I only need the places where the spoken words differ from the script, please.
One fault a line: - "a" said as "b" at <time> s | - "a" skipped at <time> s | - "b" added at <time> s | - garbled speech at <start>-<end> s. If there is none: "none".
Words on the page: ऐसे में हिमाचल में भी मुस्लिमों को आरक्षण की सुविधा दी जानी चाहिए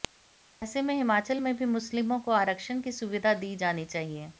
none